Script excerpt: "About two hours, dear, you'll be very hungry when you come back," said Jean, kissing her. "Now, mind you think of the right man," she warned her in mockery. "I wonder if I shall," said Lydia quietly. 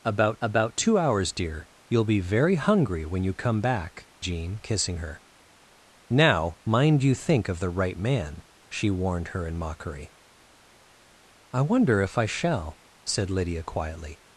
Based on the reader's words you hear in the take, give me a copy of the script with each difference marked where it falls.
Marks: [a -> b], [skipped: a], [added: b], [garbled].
"About [added: about] two hours, dear, you'll be very hungry when you come back," [skipped: said] Jean, kissing her. "Now, mind you think of the right man," she warned her in mockery. "I wonder if I shall," said Lydia quietly.